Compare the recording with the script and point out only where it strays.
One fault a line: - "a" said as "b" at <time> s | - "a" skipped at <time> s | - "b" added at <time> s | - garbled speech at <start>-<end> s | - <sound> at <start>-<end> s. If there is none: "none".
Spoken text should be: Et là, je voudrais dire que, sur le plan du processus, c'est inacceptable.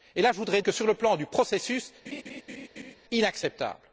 - "dire" skipped at 0.6 s
- "c'est" skipped at 1.9 s
- laugh at 2.1-3.0 s